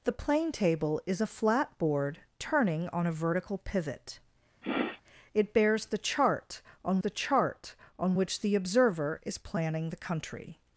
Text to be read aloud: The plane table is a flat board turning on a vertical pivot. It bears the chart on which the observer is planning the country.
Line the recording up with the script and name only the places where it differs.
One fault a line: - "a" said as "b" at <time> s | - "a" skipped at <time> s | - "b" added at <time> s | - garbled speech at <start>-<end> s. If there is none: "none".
- "the chart on" added at 7.0 s